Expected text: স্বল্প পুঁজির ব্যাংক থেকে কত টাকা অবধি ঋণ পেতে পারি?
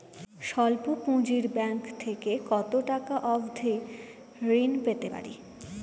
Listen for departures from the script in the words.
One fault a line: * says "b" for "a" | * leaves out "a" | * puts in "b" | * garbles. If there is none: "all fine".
all fine